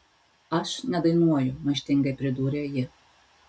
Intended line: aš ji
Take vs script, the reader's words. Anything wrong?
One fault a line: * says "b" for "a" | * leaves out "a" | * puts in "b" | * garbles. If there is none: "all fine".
* puts in "nedainuoju maištingai pridūrė"